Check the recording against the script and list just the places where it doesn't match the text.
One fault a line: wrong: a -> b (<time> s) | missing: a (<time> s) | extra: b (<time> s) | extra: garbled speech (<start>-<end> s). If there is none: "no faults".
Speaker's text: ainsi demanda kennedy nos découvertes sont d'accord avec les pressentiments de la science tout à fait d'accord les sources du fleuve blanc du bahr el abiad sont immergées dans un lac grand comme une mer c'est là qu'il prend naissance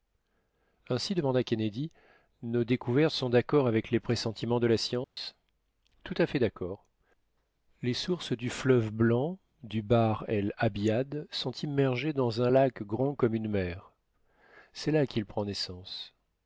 no faults